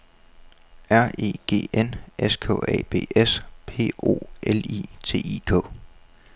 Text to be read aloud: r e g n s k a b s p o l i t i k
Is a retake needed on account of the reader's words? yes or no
no